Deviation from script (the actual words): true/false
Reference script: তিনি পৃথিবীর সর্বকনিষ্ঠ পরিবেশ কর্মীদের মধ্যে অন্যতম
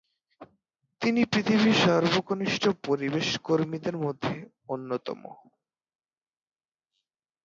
false